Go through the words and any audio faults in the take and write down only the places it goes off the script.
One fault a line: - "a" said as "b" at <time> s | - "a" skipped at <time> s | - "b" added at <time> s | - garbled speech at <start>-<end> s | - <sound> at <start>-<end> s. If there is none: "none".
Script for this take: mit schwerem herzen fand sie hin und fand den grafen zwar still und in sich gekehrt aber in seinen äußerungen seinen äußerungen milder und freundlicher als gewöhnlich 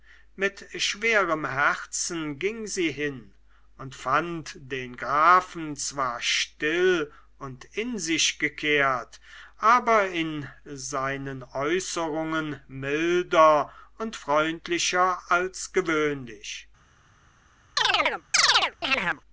- "fand" said as "ging" at 2.4 s
- "seinen äußerungen" skipped at 12.6 s
- chirp at 17.8-19.2 s